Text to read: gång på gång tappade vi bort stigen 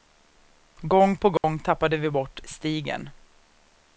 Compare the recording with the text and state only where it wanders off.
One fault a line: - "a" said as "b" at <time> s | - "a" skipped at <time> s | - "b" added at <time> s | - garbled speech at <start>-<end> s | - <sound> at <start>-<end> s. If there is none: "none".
- dropout at 1.4-1.4 s